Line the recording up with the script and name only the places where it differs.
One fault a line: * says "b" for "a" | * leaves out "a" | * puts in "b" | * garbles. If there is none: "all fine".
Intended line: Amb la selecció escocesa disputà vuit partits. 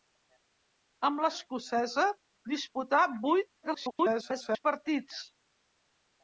* leaves out "selecció"
* garbles